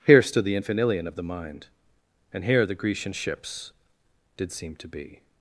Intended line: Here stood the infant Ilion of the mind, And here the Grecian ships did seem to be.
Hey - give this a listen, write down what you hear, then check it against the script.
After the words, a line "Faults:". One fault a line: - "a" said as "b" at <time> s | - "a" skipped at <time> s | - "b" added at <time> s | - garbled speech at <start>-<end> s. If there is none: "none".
Here stood the infant Ilion of the mind, And here the Grecian ships did seem to be.
Faults:
none